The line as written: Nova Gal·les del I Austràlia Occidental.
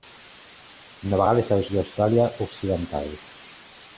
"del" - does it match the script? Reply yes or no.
yes